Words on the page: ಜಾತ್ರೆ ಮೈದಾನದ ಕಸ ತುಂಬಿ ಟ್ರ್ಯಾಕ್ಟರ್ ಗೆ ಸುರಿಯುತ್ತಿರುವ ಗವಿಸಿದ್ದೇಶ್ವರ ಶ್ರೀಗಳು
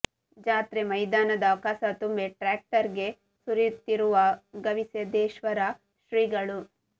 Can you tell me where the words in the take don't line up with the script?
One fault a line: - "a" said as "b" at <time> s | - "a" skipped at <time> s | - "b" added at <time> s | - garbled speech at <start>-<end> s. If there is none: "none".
none